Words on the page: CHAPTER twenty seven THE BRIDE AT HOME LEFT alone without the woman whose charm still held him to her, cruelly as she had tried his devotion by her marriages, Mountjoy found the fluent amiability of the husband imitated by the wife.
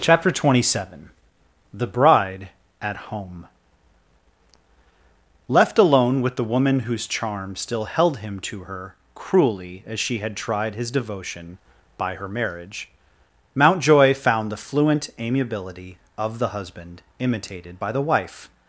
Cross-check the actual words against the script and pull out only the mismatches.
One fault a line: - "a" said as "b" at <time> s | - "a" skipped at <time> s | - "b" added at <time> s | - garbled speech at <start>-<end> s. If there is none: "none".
- "without" said as "with" at 6.2 s
- "marriages" said as "marriage" at 12.3 s